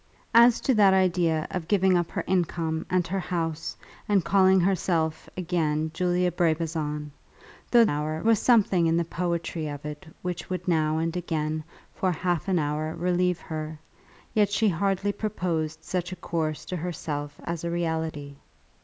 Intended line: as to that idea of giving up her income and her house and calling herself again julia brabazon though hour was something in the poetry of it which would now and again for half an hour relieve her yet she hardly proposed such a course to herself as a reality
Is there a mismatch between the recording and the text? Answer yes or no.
no